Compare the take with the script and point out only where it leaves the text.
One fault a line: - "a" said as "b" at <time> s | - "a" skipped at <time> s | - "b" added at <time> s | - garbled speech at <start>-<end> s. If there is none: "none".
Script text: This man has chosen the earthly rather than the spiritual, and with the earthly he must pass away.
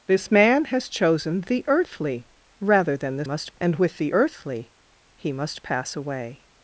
- "spiritual" said as "must" at 3.2 s